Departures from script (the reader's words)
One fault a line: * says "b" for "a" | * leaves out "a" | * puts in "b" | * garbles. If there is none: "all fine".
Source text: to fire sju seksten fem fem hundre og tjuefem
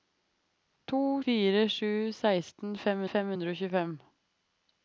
all fine